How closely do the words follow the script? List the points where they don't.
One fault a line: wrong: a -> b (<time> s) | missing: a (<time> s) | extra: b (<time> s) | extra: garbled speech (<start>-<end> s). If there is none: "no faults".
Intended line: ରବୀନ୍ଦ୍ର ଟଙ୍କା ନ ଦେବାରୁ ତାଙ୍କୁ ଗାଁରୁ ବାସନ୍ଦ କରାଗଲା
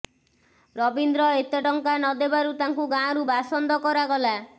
extra: ଏତେ (1.3 s)